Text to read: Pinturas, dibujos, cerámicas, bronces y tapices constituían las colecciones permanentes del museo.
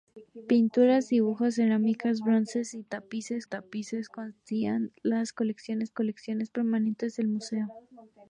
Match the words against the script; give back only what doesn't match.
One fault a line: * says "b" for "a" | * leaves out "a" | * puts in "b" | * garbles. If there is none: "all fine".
* puts in "tapices"
* puts in "colecciones"